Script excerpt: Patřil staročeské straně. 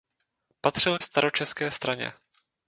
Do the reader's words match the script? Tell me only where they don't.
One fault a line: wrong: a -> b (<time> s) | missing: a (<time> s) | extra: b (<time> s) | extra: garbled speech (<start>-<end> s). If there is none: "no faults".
no faults